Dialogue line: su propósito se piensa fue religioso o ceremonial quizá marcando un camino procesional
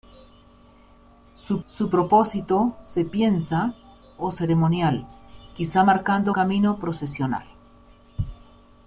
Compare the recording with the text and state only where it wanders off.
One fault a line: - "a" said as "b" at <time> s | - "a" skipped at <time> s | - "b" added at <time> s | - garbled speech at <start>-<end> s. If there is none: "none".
- "su" added at 1.7 s
- "fue religioso" skipped at 3.7 s
- "un" skipped at 6.3 s